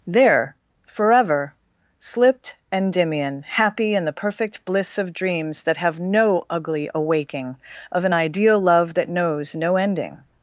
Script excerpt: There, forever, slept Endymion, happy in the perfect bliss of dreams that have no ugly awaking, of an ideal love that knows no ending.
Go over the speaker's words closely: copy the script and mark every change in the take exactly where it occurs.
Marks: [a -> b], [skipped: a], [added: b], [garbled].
There, forever, [slept -> slipped] Endymion, happy in the perfect bliss of dreams that have no ugly awaking, of an ideal love that knows no ending.